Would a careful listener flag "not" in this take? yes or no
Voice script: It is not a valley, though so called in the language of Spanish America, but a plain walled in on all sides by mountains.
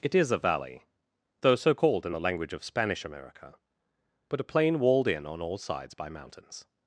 yes